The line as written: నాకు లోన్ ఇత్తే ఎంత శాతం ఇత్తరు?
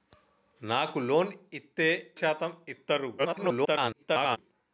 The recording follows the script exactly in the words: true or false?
false